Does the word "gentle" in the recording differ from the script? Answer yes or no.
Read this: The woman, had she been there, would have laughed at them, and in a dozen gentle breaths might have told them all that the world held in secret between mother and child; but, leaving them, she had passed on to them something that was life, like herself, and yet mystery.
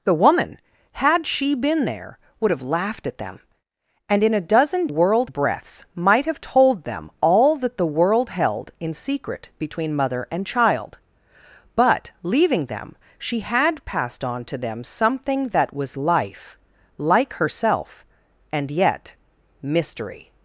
yes